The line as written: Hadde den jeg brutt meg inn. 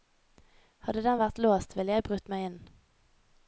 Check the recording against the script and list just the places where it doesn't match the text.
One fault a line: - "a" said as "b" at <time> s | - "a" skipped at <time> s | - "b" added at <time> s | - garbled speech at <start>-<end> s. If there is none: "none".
- "vært låst ville" added at 1.2 s